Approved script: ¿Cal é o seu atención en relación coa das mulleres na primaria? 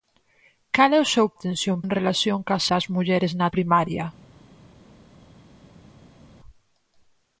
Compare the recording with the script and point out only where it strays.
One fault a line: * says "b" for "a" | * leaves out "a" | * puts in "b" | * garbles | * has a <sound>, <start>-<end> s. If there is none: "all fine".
all fine